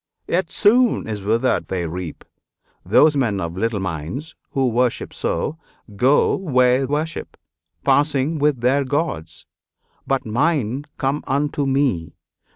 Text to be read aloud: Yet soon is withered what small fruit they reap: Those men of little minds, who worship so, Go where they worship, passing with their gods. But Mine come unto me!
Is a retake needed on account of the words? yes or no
yes